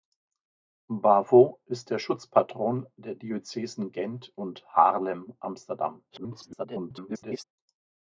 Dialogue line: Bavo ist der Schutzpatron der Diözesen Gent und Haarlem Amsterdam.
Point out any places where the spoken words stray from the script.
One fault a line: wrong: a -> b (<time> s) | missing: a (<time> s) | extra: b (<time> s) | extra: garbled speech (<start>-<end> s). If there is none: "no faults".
extra: garbled speech (6.1-7.4 s)